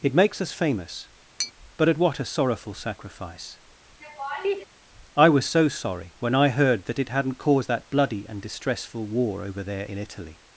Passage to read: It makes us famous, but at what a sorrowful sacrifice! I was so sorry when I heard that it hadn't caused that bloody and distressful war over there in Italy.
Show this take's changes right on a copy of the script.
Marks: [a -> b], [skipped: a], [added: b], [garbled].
It makes us famous, but at what a sorrowful sacrifice! I was so sorry when I heard that it hadn't caused that bloody and distressful war over there in Italy.